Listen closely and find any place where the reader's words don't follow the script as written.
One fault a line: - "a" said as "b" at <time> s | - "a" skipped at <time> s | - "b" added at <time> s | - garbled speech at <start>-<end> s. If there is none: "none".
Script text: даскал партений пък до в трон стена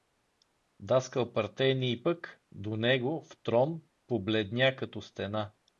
- "него" added at 2.8 s
- "побледня като" added at 4.1 s